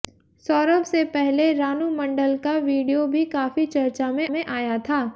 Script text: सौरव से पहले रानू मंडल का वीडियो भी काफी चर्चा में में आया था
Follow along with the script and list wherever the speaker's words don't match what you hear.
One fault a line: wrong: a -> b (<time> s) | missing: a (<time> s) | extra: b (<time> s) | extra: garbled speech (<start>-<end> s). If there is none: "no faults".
no faults